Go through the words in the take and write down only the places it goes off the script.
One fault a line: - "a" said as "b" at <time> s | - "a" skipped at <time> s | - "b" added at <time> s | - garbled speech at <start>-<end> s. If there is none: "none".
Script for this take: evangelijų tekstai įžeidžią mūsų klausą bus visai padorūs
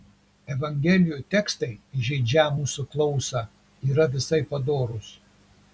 - "bus" said as "yra" at 3.9 s